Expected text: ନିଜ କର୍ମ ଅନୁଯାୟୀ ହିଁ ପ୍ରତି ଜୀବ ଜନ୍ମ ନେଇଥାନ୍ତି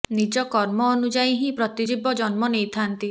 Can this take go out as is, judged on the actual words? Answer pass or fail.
pass